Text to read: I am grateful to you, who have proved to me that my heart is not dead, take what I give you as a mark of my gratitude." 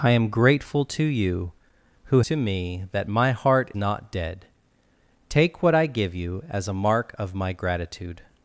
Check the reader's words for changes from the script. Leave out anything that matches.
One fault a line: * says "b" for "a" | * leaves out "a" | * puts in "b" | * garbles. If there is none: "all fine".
* leaves out "have proved"
* leaves out "is"